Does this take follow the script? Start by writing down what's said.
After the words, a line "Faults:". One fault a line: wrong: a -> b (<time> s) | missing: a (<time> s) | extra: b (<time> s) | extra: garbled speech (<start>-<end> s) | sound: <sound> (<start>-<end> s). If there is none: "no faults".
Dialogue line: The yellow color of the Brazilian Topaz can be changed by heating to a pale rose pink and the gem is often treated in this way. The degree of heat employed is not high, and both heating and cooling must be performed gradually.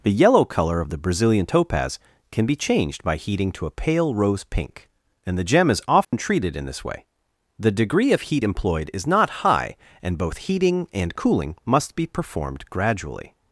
The yellow color of the Brazilian Topaz can be changed by heating to a pale rose pink and the gem is often treated in this way. The degree of heat employed is not high, and both heating and cooling must be performed gradually.
Faults:
sound: dropout (6.0-6.1 s)